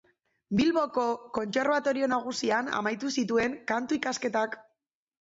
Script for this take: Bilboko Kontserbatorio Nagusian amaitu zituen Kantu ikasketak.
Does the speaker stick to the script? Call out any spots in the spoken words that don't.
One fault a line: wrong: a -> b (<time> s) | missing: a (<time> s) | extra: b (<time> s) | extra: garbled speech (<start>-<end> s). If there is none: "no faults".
no faults